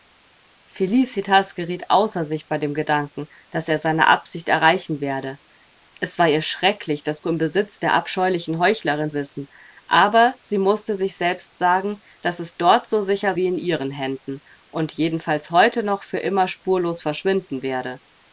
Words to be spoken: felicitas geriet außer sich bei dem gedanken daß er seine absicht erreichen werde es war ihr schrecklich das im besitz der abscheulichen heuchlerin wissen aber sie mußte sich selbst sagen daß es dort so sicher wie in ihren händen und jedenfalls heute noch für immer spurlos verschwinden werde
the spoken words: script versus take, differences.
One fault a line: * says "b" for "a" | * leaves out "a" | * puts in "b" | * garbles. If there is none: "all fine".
all fine